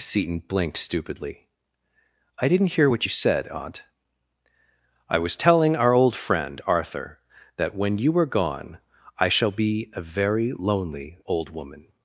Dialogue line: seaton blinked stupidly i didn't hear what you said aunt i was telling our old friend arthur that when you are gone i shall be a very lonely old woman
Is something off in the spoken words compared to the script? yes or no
no